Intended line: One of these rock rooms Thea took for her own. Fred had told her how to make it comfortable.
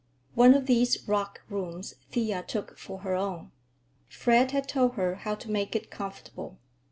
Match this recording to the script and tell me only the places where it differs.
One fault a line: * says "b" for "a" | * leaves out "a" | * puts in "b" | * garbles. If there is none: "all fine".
all fine